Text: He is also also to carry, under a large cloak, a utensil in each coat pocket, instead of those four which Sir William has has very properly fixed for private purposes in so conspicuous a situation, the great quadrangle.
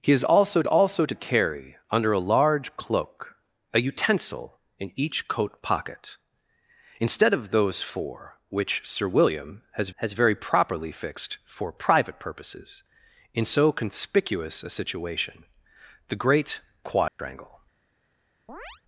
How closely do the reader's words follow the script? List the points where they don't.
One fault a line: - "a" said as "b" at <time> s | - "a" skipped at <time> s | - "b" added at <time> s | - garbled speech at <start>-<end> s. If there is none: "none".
none